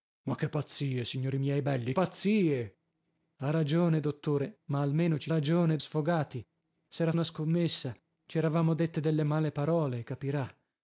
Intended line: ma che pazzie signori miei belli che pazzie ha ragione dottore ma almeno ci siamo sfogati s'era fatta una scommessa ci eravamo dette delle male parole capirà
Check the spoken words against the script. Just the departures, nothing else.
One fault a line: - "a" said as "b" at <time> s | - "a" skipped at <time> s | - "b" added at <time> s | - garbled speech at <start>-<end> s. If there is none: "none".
- "che" skipped at 1.9 s
- "siamo" said as "ragione" at 5.3 s
- "fatta" skipped at 7.1 s